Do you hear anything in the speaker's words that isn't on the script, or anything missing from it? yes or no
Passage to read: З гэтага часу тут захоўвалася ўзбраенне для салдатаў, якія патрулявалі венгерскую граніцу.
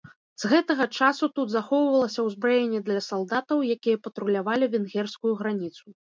no